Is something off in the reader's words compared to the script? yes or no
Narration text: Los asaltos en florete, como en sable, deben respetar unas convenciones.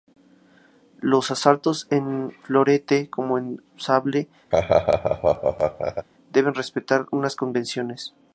no